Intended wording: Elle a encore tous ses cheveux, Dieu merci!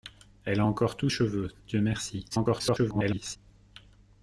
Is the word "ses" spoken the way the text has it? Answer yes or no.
no